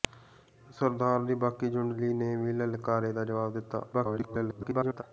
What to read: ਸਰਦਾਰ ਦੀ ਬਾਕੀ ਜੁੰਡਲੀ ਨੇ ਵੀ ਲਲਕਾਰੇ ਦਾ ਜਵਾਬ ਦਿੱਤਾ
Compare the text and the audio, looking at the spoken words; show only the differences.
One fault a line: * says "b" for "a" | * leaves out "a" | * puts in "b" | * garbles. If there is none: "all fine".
* garbles